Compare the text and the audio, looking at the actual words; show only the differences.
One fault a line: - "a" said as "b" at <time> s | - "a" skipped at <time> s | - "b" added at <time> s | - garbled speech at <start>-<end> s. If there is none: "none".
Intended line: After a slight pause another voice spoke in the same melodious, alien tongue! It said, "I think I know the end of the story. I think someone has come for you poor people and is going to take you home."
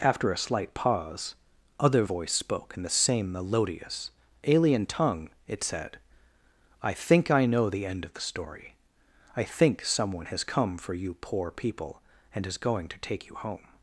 - "another" said as "other" at 1.8 s